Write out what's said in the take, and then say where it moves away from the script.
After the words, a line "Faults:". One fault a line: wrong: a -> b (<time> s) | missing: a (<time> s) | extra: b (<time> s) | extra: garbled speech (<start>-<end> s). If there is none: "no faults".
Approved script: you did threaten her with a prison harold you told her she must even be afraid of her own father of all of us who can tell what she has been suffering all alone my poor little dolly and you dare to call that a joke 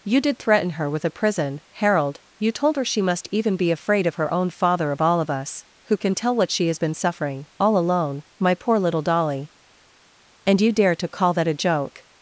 you did threaten her with a prison harold you told her she must even be afraid of her own father of all of us who can tell what she has been suffering all alone my poor little dolly and you dare to call that a joke
Faults:
no faults